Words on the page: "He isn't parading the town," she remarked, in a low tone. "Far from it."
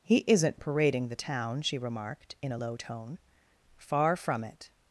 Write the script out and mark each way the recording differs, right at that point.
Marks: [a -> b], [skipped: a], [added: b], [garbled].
"He isn't parading the town," she remarked, in a low tone. "Far from it."